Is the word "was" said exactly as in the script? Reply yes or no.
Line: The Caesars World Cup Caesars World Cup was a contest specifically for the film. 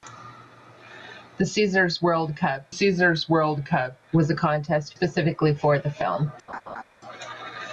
yes